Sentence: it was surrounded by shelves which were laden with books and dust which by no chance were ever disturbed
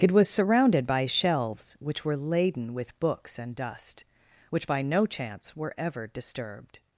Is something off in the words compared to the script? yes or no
no